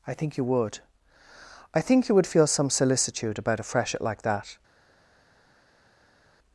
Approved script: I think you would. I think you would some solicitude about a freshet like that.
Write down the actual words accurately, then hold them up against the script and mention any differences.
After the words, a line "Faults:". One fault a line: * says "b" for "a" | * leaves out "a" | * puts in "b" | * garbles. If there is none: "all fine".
I think you would. I think you would feel some solicitude about a freshet like that.
Faults:
* puts in "feel"